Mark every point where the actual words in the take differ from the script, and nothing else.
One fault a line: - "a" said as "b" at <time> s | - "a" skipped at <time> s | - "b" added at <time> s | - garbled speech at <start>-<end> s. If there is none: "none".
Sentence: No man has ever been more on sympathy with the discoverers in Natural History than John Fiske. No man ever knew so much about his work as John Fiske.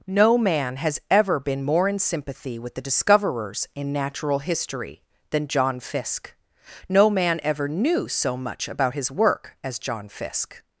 - "on" said as "in" at 1.9 s